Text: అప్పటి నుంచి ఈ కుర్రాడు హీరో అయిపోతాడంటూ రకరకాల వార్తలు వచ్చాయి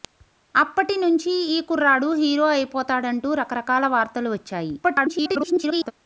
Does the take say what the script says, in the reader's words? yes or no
no